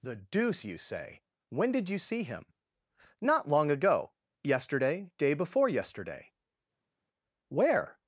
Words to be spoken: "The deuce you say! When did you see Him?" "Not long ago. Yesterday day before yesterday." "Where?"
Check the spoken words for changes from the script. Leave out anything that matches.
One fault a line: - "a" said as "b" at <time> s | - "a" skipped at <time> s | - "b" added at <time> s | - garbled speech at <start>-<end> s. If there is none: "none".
none